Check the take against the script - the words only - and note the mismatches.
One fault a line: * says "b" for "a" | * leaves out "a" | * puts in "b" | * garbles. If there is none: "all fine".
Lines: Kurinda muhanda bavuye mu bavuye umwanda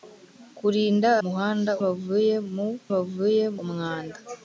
all fine